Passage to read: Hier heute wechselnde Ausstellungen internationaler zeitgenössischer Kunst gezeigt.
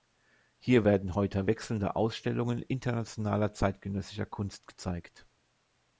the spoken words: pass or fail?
fail